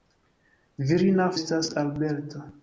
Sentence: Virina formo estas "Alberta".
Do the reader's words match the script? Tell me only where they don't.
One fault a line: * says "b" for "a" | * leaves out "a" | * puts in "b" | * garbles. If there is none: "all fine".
* leaves out "formo"